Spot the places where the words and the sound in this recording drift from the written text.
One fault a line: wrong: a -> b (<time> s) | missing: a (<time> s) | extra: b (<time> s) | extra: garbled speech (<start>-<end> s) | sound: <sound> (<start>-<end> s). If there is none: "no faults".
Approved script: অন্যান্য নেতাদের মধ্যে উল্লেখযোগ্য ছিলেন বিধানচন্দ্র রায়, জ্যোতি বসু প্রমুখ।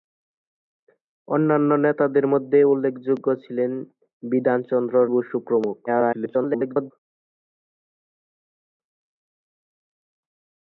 missing: রায় জ্যোতি (5.0 s)
extra: garbled speech (5.9-6.9 s)